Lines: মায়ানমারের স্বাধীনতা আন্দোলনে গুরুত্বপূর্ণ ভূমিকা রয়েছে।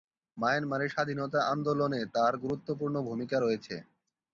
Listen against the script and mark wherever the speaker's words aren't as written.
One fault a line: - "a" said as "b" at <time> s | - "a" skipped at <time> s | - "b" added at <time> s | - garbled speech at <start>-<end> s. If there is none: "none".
- "তার" added at 2.1 s